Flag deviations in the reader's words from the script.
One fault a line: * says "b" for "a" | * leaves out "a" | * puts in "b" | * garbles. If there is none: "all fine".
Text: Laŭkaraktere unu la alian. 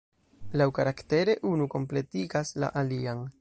* puts in "kompletigas"